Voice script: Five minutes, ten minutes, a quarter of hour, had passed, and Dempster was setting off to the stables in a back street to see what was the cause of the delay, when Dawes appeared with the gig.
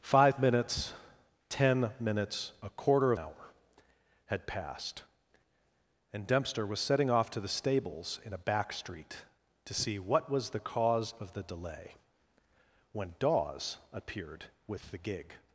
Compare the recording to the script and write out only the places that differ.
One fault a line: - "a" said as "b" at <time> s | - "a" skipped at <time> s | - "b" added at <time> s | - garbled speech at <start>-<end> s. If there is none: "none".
none